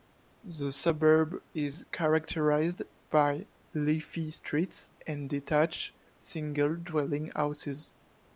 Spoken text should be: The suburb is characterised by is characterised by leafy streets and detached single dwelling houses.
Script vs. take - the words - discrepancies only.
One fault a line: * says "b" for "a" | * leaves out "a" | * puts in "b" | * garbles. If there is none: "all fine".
* leaves out "is characterised by"